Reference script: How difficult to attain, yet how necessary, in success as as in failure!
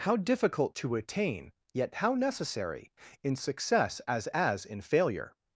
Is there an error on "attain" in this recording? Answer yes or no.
no